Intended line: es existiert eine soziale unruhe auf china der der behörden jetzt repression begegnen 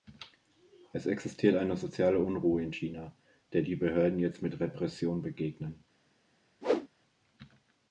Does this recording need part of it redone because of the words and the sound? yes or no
yes